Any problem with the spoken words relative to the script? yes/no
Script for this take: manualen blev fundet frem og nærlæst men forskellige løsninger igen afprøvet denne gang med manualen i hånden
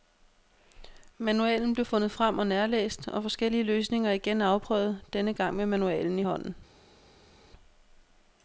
yes